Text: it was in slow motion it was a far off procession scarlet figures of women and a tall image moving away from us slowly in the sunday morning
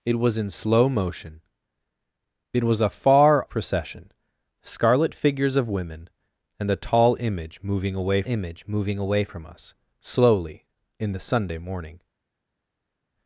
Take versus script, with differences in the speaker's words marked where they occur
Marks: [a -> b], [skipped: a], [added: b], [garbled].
it was in slow motion it was a far [skipped: off] procession scarlet figures of women and a tall image moving away [added: image moving away] from us slowly in the sunday morning